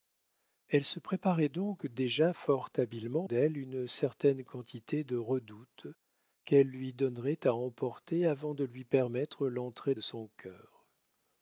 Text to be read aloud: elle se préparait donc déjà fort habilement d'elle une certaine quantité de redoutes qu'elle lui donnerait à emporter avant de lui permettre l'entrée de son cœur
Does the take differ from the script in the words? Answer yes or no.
no